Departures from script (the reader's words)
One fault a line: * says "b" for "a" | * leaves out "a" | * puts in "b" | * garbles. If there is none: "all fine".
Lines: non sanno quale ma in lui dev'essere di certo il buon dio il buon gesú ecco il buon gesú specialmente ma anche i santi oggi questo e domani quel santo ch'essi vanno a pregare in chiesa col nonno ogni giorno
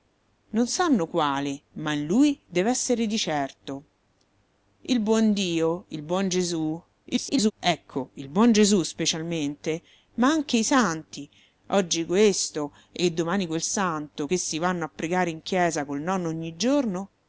* garbles